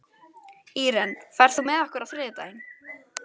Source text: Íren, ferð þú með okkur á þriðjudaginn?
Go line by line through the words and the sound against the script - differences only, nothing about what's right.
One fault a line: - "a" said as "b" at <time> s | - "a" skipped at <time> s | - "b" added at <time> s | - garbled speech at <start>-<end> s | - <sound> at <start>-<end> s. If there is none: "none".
none